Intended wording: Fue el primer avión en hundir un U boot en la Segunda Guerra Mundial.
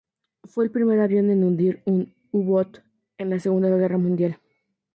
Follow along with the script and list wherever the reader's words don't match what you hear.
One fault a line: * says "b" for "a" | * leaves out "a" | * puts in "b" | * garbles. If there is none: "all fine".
all fine